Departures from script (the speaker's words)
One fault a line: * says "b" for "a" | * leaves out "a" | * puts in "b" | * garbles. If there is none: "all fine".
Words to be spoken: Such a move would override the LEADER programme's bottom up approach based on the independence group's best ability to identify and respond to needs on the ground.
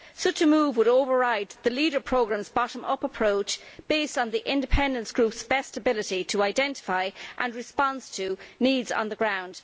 all fine